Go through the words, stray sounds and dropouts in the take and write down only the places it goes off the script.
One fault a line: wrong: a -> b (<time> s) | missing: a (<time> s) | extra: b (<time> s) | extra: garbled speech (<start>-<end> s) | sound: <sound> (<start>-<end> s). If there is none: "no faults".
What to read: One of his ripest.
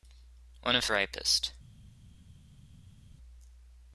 missing: his (0.8 s)